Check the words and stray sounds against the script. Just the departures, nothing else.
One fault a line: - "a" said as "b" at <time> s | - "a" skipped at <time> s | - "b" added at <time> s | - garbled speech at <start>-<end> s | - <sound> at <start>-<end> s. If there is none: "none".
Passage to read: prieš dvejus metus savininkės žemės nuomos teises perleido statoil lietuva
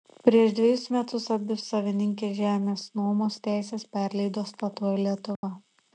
- "abi" added at 1.4 s
- dropout at 5.4-5.4 s